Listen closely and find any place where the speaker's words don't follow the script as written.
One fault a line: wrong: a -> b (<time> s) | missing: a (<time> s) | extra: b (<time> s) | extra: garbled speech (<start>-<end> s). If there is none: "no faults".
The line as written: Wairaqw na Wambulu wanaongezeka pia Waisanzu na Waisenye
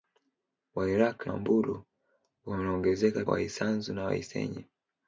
missing: na (1.3 s)
missing: pia (3.2 s)